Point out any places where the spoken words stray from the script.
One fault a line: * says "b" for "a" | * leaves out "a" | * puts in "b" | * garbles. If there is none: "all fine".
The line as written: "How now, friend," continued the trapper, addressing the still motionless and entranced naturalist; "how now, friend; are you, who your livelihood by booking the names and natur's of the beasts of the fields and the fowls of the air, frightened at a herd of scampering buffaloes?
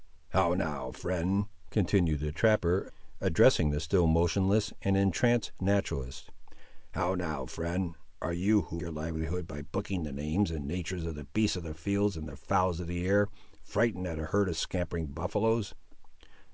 all fine